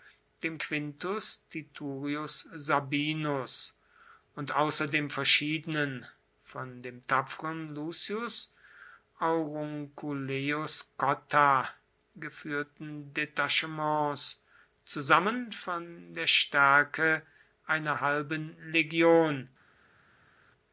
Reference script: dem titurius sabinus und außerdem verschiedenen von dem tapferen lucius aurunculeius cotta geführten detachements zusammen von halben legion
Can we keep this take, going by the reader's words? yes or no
no